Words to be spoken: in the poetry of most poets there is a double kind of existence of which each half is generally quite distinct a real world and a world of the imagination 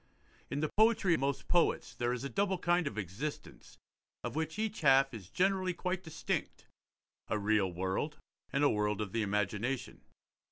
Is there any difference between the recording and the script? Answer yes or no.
yes